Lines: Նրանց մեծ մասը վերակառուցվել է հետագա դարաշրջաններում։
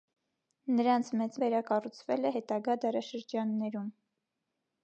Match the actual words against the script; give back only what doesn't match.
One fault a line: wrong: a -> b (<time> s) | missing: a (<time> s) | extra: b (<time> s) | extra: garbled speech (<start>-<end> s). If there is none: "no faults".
missing: մասը (1.4 s)